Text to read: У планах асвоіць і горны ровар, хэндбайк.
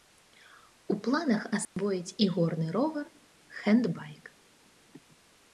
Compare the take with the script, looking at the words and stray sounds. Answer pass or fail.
fail